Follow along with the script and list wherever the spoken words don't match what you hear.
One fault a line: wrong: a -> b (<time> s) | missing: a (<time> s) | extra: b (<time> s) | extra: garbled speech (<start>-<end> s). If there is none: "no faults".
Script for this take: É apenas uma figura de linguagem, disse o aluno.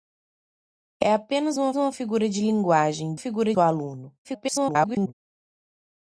extra: uma (1.8 s)
wrong: disse -> figura (3.2 s)
extra: garbled speech (4.2-5.1 s)